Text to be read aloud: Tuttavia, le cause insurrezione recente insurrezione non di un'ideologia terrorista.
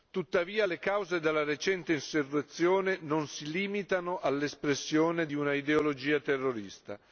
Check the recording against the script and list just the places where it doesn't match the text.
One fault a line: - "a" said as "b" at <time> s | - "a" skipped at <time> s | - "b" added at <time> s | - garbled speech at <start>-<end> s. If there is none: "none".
- "insurrezione" said as "della" at 1.2 s
- "si limitano all'espressione" added at 3.3 s